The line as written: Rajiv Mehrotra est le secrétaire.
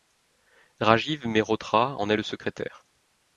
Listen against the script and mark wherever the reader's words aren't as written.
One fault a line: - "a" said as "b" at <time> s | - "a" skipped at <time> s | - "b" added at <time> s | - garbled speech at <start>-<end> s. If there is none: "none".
- "en" added at 2.0 s